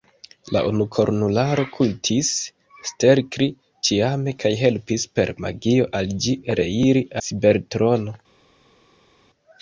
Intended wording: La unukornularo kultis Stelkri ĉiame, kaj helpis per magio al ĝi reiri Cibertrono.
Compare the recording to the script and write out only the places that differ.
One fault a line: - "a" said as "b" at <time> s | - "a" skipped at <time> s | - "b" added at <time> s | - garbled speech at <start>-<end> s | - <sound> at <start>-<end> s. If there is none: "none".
none